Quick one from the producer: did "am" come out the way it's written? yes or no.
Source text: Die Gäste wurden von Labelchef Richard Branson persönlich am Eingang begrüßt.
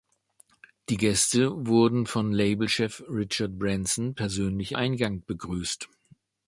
no